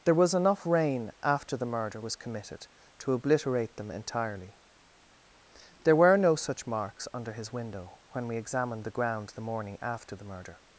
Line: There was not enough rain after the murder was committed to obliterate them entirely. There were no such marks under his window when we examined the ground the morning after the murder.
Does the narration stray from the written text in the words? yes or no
yes